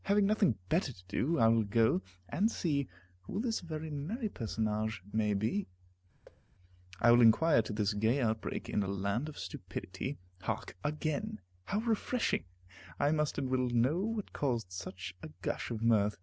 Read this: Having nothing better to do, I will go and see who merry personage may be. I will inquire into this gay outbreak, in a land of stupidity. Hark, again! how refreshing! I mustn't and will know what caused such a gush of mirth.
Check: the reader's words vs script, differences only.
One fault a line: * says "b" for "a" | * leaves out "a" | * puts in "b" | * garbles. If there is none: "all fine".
* puts in "this very"
* says "must" for "mustn't"